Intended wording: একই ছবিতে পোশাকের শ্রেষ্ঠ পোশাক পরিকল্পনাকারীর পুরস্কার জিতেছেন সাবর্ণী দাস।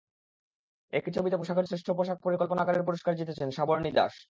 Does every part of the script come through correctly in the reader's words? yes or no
yes